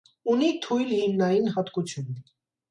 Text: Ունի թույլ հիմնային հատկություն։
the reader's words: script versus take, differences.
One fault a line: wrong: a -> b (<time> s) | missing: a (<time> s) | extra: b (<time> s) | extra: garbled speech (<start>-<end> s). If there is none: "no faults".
no faults